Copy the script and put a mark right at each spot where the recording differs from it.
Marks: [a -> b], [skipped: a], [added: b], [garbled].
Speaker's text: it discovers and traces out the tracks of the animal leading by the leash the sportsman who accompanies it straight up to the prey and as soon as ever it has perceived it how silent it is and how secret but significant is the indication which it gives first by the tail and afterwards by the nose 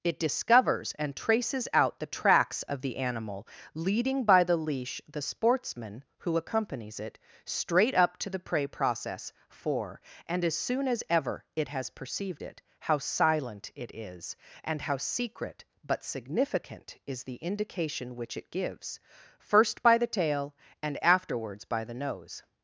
it discovers and traces out the tracks of the animal leading by the leash the sportsman who accompanies it straight up to the prey [added: process for] and as soon as ever it has perceived it how silent it is and how secret but significant is the indication which it gives first by the tail and afterwards by the nose